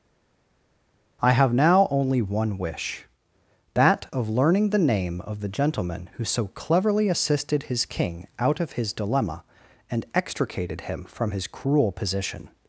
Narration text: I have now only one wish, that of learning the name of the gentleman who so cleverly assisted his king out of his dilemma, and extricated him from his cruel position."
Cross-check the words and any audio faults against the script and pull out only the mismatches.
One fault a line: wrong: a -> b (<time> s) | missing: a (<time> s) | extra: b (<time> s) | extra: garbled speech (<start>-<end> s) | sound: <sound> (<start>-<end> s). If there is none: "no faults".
no faults